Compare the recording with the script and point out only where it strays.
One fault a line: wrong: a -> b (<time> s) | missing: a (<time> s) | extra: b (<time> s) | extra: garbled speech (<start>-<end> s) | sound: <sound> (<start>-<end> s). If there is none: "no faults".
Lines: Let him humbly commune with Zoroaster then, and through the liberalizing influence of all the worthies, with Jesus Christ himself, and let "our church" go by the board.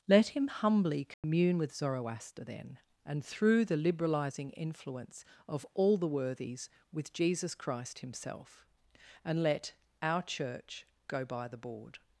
sound: dropout (1.1-1.2 s)